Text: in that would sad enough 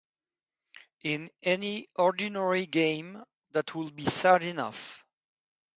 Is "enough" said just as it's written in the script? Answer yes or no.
yes